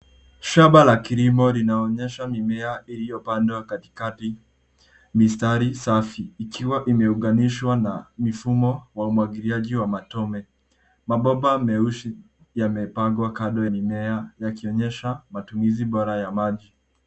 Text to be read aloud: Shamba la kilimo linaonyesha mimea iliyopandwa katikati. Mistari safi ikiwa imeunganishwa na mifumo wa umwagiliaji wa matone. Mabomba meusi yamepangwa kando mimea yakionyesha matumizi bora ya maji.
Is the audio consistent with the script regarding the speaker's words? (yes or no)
yes